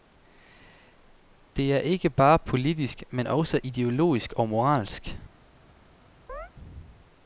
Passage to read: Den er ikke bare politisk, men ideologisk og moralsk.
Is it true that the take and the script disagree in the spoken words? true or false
true